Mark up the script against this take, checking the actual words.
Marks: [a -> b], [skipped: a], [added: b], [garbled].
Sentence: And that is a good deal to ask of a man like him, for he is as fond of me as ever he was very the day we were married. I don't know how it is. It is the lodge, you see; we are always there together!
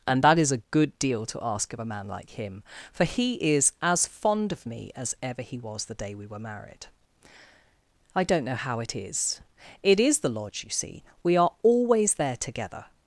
And that is a good deal to ask of a man like him, for he is as fond of me as ever he was [skipped: very] the day we were married. I don't know how it is. It is the lodge, you see; we are always there together!